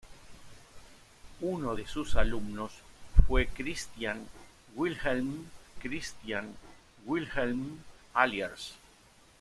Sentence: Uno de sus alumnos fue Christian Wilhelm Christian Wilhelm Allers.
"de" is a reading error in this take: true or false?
false